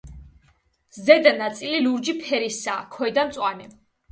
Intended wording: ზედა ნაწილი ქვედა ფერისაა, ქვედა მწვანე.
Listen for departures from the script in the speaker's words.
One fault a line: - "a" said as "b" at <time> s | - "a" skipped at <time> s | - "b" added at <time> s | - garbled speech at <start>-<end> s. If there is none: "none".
- "ქვედა" said as "ლურჯი" at 1.8 s